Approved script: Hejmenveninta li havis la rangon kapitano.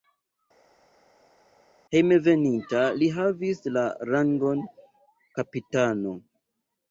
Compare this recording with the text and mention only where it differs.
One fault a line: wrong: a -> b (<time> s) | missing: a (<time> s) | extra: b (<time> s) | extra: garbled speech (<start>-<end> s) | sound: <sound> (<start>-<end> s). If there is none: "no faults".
no faults